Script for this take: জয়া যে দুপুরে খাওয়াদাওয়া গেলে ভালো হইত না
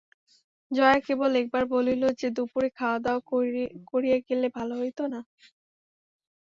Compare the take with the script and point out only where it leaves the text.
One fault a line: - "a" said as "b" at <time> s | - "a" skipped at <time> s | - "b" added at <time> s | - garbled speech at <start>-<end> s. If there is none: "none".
- "কেবল একবার বলিল" added at 1.1 s
- "করিয়া" added at 3.9 s